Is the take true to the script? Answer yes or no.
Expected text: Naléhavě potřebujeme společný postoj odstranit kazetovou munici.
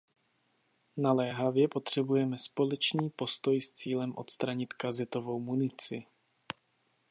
no